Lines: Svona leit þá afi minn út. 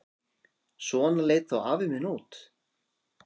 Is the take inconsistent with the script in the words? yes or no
no